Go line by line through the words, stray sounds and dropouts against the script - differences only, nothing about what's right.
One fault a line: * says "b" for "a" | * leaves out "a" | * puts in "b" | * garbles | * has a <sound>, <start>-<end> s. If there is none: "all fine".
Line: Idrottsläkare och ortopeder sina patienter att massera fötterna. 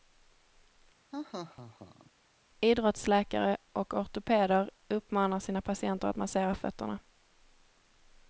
* has a laugh, 1.1-2.1 s
* puts in "uppmanar"